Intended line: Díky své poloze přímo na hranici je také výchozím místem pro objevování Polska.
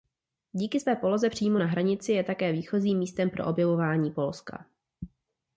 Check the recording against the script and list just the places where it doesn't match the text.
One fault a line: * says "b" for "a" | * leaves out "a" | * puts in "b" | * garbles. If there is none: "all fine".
all fine